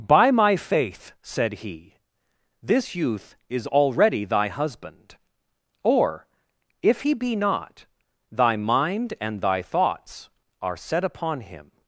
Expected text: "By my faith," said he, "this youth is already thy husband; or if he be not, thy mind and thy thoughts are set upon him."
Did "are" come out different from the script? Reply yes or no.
no